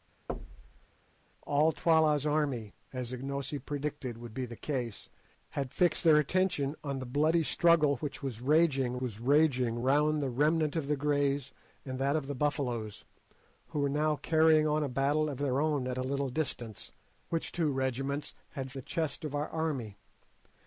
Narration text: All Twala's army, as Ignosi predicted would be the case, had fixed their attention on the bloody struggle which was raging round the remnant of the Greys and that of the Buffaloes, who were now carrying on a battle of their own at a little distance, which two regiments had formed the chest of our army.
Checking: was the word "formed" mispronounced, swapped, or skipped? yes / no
yes